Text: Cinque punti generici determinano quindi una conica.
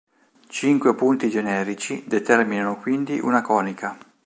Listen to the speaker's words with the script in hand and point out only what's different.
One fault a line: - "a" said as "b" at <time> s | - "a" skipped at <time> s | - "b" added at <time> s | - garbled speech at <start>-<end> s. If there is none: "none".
none